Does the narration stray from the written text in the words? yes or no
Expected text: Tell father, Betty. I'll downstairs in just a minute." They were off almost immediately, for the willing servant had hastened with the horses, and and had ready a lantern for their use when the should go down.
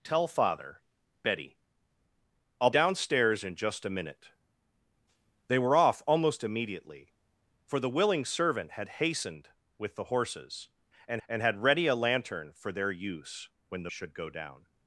no